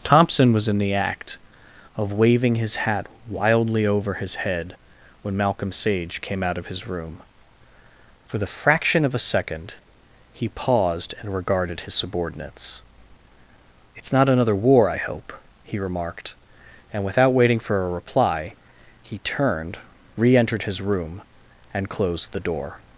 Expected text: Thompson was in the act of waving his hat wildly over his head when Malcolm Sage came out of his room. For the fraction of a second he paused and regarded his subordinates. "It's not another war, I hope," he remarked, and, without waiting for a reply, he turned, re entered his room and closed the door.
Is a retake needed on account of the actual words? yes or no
no